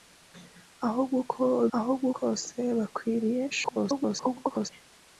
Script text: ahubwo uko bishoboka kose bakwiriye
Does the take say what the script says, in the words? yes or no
no